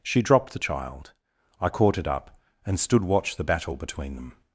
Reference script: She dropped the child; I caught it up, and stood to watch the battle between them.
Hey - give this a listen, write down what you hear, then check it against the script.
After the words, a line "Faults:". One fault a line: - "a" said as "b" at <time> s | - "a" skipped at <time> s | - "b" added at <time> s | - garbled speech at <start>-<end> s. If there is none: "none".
She dropped the child; I caught it up, and stood watch the battle between them.
Faults:
- "to" skipped at 3.0 s